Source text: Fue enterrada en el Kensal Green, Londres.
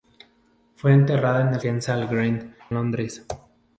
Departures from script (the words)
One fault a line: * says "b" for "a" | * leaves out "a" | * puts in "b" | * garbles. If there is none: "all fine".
all fine